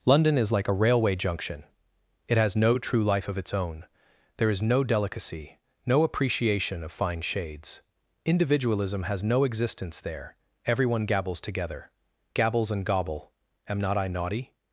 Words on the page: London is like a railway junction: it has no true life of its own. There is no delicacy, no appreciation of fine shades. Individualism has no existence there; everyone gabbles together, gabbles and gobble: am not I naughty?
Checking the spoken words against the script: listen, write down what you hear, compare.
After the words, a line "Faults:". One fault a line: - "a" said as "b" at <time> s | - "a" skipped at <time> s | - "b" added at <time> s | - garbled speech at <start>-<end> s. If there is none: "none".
London is like a railway junction: it has no true life of its own. There is no delicacy, no appreciation of fine shades. Individualism has no existence there; everyone gabbles together, gabbles and gobble: am not I naughty?
Faults:
none